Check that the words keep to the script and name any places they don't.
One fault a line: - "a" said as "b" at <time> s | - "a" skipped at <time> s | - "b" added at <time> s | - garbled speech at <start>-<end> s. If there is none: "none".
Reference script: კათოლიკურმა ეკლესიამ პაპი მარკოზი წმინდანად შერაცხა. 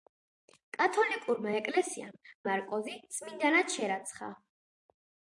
- "პაპი" skipped at 2.2 s